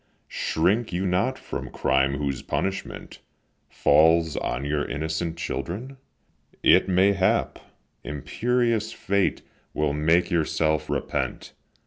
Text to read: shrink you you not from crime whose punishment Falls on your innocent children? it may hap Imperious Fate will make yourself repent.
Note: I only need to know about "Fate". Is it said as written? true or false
true